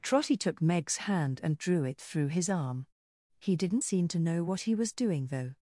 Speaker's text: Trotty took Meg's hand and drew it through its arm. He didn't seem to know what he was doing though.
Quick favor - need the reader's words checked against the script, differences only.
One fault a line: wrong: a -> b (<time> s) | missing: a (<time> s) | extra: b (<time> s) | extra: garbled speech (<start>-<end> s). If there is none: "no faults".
wrong: its -> his (2.3 s)